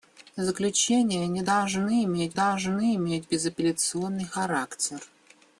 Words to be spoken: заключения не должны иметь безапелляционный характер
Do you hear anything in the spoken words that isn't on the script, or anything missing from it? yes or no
yes